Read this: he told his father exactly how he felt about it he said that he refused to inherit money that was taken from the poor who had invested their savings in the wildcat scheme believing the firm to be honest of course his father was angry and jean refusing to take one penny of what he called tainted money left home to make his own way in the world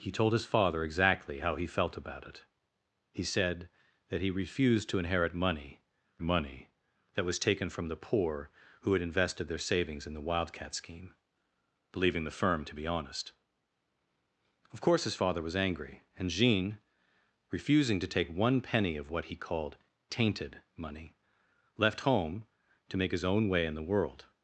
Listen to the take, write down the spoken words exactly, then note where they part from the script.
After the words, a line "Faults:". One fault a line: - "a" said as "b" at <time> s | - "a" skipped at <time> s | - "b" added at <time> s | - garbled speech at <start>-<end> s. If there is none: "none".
he told his father exactly how he felt about it he said that he refused to inherit money money that was taken from the poor who had invested their savings in the wildcat scheme believing the firm to be honest of course his father was angry and jean refusing to take one penny of what he called tainted money left home to make his own way in the world
Faults:
- "money" added at 6.2 s